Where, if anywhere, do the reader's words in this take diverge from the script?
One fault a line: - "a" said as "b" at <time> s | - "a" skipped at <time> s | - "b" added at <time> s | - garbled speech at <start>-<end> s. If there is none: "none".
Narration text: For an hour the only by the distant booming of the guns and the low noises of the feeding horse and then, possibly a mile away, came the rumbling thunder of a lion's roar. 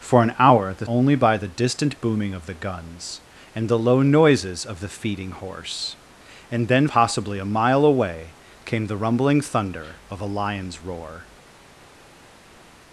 none